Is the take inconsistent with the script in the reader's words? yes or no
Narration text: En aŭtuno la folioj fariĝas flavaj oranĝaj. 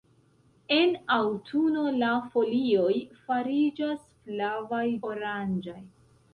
no